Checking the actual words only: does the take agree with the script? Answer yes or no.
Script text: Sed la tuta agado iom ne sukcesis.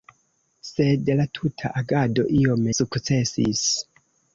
no